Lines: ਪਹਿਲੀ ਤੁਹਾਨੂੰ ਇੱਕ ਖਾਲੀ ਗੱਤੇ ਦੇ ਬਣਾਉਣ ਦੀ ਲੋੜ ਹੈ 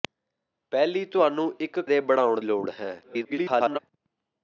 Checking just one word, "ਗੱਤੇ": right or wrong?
wrong